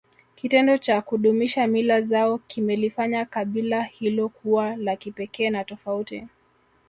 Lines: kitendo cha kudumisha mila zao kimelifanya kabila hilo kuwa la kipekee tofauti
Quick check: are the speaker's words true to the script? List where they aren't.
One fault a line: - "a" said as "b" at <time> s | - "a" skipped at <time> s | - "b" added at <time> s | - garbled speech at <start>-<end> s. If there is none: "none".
- "na" added at 5.5 s